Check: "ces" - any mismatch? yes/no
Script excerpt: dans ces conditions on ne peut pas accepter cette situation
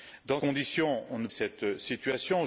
yes